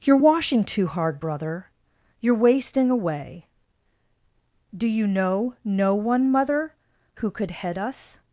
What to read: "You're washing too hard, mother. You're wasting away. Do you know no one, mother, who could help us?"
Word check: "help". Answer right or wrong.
wrong